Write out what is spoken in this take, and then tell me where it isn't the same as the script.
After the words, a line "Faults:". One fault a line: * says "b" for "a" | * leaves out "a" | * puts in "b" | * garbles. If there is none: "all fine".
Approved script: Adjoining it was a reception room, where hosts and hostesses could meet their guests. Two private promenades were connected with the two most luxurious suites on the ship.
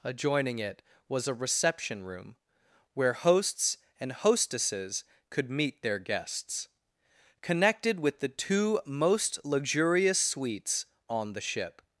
Adjoining it was a reception room, where hosts and hostesses could meet their guests. connected with the two most luxurious suites on the ship.
Faults:
* leaves out "Two private promenades were"